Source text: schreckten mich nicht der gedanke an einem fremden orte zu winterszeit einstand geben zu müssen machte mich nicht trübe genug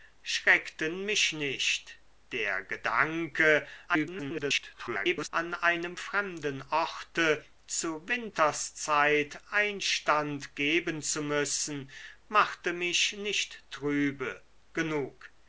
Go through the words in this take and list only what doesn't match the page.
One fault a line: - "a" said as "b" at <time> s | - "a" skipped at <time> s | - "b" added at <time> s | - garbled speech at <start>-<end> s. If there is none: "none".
- garbled speech at 3.9-5.3 s